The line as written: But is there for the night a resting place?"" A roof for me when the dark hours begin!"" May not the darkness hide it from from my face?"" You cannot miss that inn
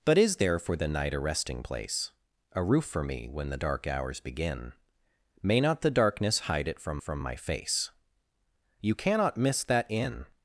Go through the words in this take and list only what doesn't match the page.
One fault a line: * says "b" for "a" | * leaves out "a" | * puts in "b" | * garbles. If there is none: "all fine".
all fine